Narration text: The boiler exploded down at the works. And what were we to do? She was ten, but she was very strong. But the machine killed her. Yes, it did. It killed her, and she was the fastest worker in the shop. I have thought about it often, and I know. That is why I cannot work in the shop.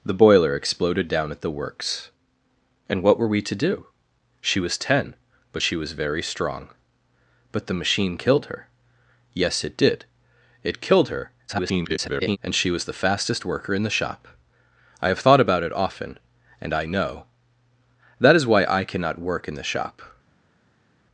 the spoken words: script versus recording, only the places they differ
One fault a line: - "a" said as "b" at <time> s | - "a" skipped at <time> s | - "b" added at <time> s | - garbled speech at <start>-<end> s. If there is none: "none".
- garbled speech at 11.5-12.4 s